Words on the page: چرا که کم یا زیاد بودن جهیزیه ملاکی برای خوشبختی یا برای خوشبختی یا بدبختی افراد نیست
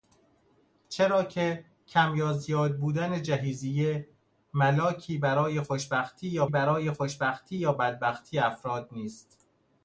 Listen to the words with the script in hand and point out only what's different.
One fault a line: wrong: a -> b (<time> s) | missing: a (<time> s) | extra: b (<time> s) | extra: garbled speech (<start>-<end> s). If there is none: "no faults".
no faults